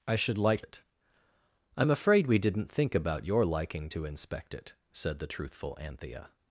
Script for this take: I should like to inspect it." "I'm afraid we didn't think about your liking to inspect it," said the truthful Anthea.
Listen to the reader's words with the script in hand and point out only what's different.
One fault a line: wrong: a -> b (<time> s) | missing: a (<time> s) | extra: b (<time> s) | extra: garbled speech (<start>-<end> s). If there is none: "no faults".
missing: to inspect (0.6 s)